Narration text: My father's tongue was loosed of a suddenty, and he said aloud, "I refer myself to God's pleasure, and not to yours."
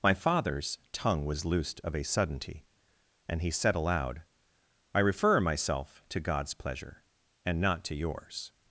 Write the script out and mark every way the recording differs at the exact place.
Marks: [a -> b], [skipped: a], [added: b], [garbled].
My father's tongue was loosed of a suddenty, and he said aloud, "I refer myself to God's pleasure, and not to yours."